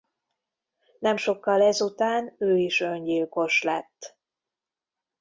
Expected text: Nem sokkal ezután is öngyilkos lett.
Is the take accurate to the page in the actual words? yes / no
no